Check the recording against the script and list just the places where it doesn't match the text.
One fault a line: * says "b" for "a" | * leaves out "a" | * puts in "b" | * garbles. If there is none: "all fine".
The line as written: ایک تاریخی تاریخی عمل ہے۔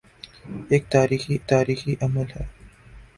all fine